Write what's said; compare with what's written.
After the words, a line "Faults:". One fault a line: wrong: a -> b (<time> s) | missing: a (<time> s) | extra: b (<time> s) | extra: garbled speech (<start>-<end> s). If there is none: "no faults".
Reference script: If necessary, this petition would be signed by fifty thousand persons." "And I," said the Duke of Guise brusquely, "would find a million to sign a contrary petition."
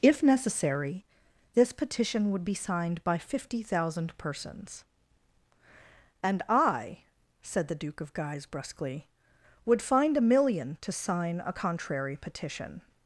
If necessary, this petition would be signed by fifty thousand persons." "And I," said the Duke of Guise brusquely, "would find a million to sign a contrary petition."
Faults:
no faults